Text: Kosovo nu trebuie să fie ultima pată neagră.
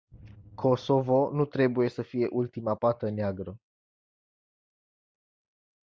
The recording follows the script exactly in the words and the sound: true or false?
true